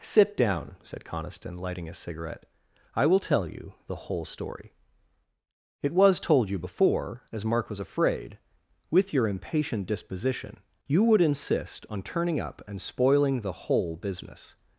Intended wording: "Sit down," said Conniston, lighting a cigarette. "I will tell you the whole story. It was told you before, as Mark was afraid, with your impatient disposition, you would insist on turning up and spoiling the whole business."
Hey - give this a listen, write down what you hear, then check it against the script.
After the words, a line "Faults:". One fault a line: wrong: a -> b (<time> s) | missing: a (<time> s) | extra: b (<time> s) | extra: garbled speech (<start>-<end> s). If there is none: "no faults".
"Sit down," said Conniston, lighting a cigarette. "I will tell you the whole story. It was told you before, as Mark was afraid, with your impatient disposition, you would insist on turning up and spoiling the whole business."
Faults:
no faults